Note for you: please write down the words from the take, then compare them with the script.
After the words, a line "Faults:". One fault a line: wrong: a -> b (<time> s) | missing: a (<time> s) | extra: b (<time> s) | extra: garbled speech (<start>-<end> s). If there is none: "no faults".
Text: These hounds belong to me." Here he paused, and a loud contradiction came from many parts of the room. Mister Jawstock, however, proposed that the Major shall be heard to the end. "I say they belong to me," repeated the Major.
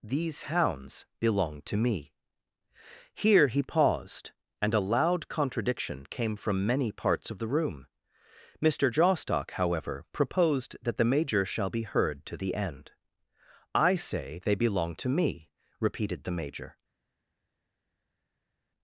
These hounds belong to me." Here he paused, and a loud contradiction came from many parts of the room. Mister Jawstock, however, proposed that the Major shall be heard to the end. "I say they belong to me," repeated the Major.
Faults:
no faults